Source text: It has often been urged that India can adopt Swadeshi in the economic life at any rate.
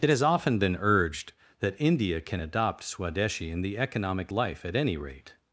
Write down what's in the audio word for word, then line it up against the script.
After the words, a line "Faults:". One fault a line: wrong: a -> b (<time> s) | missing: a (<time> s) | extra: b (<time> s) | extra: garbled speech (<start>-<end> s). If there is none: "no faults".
It has often been urged that India can adopt Swadeshi in the economic life at any rate.
Faults:
no faults